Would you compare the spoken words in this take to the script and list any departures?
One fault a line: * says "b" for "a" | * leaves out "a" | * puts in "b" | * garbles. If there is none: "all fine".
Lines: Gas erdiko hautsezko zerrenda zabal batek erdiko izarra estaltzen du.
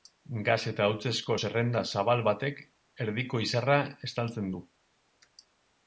* says "eta" for "erdiko"